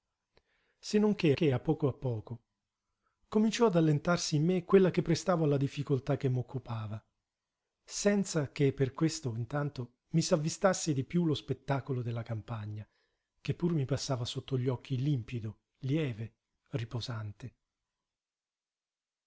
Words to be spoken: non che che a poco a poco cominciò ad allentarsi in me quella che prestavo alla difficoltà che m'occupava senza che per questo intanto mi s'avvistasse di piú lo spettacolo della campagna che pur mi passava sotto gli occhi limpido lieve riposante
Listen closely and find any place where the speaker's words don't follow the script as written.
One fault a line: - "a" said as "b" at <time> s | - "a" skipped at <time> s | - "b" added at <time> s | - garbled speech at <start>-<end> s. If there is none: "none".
none